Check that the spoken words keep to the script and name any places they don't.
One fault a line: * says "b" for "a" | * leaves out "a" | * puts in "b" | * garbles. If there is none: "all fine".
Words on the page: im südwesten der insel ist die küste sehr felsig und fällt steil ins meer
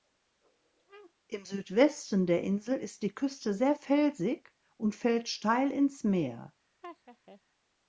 all fine